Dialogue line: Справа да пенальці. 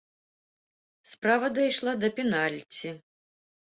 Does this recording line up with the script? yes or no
no